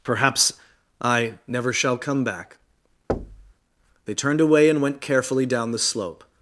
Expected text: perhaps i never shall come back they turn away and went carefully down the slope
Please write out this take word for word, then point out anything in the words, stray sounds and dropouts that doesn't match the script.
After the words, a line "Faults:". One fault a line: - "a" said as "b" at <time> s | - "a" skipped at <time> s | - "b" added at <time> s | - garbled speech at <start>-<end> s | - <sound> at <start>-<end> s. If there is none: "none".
perhaps i never shall come back they turned away and went carefully down the slope
Faults:
- thud at 3.1-3.5 s
- "turn" said as "turned" at 4.1 s